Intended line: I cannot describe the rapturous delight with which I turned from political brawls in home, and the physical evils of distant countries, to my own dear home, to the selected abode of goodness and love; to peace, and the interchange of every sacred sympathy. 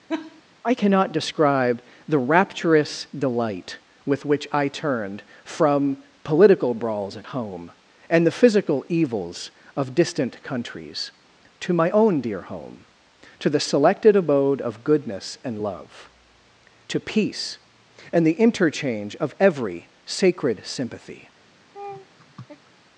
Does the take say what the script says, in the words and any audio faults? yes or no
no